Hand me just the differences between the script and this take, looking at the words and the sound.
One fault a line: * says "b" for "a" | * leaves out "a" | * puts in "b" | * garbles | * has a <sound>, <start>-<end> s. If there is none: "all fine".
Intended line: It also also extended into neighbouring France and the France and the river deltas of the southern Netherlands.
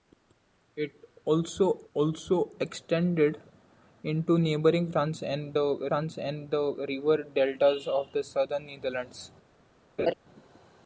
* has a laugh, 10.0-10.1 s